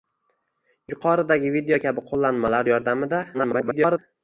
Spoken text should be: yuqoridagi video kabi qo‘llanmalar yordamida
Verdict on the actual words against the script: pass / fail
fail